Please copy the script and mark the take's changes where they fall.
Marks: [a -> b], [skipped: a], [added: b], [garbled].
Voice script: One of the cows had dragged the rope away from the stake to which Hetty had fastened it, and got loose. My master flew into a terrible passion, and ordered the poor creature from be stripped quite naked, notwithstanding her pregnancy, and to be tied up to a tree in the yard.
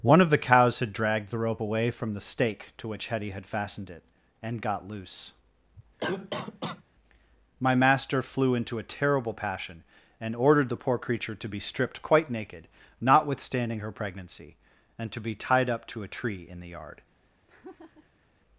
One of the cows had dragged the rope away from the stake to which Hetty had fastened it, and got loose. My master flew into a terrible passion, and ordered the poor creature [from -> to] be stripped quite naked, notwithstanding her pregnancy, and to be tied up to a tree in the yard.